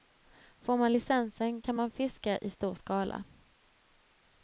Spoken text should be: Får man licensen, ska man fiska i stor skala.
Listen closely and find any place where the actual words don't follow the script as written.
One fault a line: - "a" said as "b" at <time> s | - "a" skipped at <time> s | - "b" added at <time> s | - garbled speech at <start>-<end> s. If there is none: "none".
- "ska" said as "kan" at 1.6 s